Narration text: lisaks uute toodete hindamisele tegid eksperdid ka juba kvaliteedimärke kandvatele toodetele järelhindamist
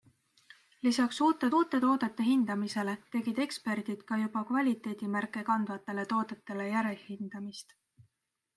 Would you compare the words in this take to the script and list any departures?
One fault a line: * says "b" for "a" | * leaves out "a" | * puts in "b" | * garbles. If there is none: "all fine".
* puts in "uute"